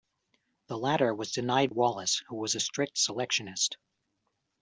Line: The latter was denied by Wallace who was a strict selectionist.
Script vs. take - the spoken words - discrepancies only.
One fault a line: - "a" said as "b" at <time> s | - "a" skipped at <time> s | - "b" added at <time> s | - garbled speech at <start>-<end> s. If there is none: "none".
- "by" skipped at 1.7 s